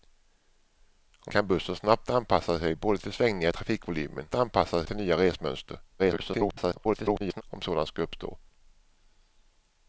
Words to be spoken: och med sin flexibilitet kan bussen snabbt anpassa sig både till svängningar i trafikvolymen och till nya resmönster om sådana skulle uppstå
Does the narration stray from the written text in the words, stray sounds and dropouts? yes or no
yes